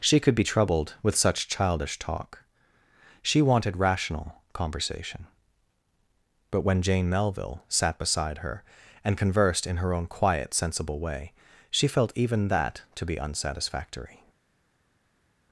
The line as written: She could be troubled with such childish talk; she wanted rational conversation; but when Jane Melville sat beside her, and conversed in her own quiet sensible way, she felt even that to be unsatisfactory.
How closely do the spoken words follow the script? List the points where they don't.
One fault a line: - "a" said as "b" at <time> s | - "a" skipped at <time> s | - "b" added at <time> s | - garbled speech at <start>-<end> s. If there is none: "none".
none